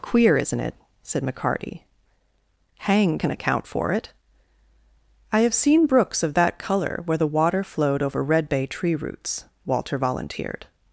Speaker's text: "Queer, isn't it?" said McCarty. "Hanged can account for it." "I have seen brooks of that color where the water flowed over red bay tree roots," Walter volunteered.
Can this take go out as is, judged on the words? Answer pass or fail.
pass